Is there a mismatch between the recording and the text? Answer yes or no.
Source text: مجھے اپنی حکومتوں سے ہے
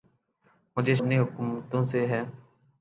no